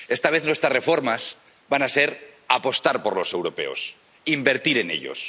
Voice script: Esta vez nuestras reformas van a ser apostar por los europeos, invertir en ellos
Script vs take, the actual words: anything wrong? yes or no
no